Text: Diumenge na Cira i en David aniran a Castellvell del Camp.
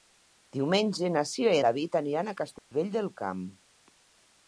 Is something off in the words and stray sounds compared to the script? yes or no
yes